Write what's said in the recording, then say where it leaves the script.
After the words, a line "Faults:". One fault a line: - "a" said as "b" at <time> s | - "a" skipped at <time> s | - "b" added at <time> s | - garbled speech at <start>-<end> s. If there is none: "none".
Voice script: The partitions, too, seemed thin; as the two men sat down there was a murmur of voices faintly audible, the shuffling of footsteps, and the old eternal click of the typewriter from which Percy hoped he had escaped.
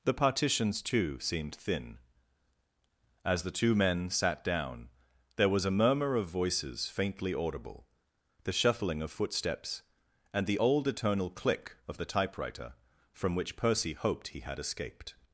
The partitions, too, seemed thin; as the two men sat down there was a murmur of voices faintly audible, the shuffling of footsteps, and the old eternal click of the typewriter from which Percy hoped he had escaped.
Faults:
none